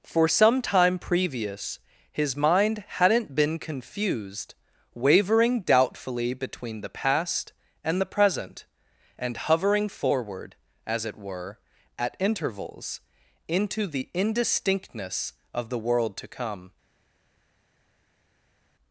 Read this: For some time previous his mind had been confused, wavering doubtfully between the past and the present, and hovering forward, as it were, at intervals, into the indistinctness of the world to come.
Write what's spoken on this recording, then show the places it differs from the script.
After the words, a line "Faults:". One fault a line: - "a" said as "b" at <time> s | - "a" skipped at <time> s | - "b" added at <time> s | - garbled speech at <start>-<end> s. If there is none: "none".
For some time previous his mind hadn't been confused, wavering doubtfully between the past and the present, and hovering forward, as it were, at intervals, into the indistinctness of the world to come.
Faults:
- "had" said as "hadn't" at 2.9 s